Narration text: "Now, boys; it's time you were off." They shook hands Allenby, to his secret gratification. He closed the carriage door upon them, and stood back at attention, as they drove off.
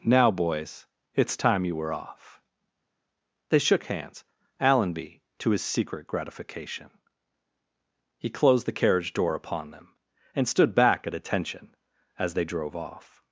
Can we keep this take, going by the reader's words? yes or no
yes